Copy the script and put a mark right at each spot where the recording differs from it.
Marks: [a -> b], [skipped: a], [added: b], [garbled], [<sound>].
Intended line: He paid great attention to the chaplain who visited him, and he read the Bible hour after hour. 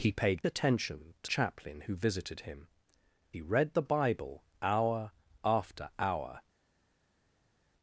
He paid [skipped: great] attention to [skipped: the] chaplain who visited him, [skipped: and] he read the Bible hour after hour.